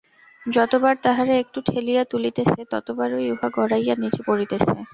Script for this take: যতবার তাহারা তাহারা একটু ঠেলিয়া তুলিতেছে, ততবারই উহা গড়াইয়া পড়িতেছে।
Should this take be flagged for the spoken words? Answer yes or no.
yes